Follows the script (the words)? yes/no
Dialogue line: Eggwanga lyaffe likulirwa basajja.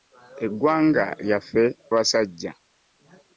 no